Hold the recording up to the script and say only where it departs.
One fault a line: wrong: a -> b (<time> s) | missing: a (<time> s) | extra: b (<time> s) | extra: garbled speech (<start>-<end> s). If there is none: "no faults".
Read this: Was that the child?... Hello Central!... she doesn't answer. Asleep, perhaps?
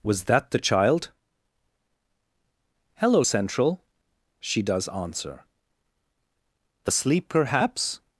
wrong: doesn't -> does (4.6 s)